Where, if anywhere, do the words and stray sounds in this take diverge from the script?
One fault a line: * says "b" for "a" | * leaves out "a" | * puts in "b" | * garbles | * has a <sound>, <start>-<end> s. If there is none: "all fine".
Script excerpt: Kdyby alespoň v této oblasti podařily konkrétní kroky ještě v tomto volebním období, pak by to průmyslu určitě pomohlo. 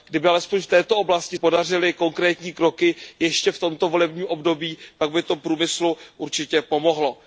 all fine